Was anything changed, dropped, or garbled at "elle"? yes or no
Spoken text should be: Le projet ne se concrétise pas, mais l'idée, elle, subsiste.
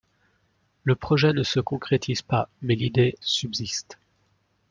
yes